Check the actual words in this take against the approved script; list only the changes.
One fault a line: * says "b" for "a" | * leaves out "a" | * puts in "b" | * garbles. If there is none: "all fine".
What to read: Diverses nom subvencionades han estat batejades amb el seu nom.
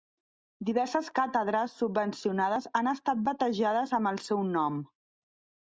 * says "càtedres" for "nom"